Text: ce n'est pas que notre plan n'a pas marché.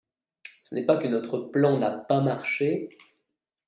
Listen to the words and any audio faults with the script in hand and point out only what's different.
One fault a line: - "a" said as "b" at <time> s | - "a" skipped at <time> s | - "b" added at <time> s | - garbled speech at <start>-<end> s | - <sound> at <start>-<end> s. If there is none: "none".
none